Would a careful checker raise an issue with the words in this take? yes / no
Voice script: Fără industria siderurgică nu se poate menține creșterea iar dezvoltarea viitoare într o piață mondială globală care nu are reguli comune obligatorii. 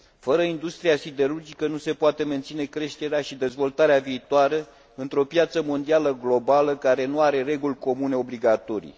yes